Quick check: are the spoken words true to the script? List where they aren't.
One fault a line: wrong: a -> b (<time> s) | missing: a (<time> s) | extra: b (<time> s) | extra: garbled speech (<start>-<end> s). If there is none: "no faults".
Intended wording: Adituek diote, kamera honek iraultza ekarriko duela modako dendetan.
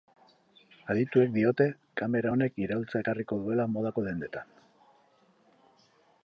no faults